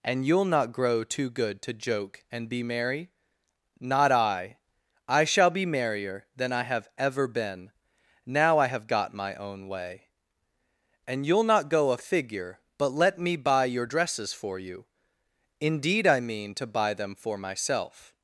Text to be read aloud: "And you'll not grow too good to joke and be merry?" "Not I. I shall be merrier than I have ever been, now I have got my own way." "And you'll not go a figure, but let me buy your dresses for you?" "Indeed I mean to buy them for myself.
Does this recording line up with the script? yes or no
yes